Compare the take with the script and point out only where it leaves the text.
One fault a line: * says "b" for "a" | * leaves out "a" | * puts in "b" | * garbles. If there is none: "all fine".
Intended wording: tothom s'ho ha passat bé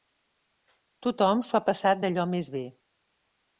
* puts in "d'allò més"